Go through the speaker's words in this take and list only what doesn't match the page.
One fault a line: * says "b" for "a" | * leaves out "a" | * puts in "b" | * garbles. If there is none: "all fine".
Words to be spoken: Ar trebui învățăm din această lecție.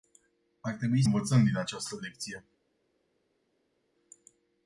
all fine